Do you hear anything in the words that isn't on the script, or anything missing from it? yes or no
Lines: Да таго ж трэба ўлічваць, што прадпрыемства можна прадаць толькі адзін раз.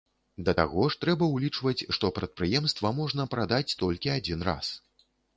no